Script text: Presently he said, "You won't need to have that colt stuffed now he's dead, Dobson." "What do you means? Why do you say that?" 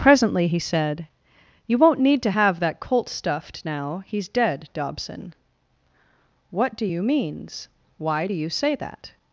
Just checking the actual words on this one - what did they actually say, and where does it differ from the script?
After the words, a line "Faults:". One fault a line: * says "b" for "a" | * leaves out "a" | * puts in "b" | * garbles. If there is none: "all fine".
Presently he said, "You won't need to have that colt stuffed now he's dead, Dobson." "What do you means? Why do you say that?"
Faults:
all fine